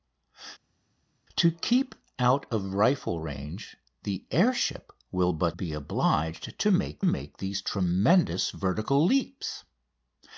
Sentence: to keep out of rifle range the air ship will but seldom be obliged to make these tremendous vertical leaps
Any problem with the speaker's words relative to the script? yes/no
yes